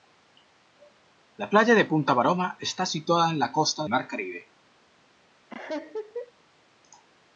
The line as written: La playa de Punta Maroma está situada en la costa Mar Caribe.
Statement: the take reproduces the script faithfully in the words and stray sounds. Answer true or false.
false